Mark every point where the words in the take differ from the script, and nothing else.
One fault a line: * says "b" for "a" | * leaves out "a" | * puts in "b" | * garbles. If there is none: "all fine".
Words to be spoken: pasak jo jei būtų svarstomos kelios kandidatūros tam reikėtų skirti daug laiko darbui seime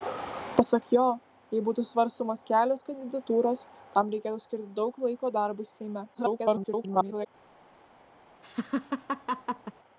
* garbles